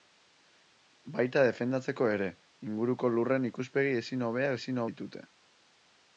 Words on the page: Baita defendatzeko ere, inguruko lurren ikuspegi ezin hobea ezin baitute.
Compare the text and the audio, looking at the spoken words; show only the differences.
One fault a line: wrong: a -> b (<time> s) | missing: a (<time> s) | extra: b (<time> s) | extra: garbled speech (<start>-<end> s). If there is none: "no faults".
no faults